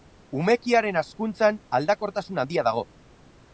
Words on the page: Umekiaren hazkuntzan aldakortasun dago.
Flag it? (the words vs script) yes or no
yes